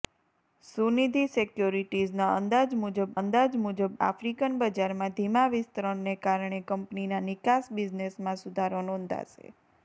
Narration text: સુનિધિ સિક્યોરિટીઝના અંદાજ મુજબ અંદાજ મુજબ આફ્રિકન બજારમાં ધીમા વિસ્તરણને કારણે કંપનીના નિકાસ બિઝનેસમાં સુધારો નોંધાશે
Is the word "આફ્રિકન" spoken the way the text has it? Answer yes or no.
yes